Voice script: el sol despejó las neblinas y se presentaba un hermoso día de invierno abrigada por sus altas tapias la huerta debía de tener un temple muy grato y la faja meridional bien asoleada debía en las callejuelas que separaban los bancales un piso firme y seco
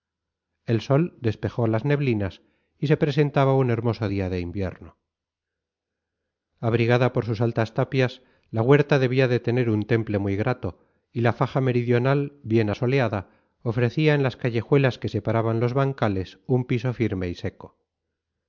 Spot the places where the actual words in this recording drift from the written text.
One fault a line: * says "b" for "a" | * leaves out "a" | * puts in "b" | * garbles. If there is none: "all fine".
* says "ofrecía" for "debía"